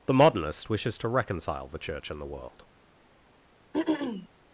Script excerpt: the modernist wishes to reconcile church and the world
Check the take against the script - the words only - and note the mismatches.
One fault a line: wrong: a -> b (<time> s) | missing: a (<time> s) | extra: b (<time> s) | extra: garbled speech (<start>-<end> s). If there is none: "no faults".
extra: the (1.7 s)